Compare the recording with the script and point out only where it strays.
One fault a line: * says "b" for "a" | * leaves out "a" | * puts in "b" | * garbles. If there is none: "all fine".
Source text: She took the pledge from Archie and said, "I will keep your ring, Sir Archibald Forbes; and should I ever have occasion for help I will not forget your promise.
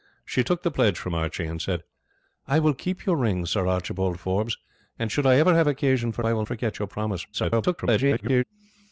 * leaves out "help"
* leaves out "not"
* garbles